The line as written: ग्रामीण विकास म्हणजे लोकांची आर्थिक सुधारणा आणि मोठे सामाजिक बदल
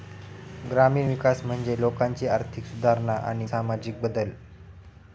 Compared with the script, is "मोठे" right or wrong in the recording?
wrong